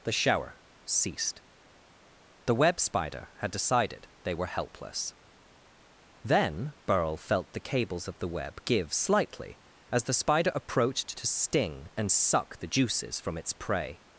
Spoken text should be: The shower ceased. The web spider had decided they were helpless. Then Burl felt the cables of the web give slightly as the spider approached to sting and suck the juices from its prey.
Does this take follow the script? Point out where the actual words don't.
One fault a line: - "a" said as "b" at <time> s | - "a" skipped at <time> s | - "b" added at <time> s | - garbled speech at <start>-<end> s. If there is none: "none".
none